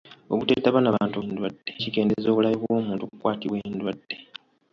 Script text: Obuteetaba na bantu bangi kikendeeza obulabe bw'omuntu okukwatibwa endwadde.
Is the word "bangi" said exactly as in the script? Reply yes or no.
no